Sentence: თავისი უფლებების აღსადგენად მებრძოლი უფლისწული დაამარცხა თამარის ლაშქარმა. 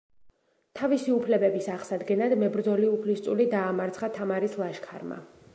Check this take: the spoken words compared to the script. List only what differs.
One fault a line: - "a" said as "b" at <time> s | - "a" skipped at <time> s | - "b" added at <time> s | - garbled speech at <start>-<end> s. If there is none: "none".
none